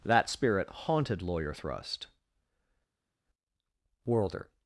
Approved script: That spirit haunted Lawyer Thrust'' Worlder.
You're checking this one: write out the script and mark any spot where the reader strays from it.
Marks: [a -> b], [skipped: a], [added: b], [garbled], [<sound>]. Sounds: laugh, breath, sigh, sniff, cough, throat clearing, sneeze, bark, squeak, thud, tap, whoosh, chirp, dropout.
That spirit haunted Lawyer Thrust'' Worlder.